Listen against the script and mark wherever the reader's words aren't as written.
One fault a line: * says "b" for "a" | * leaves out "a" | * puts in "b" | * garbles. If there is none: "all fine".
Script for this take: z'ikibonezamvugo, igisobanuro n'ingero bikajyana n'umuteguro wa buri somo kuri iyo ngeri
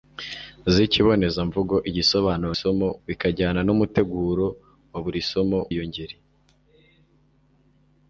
* says "somo" for "n'ingero"
* leaves out "kuri"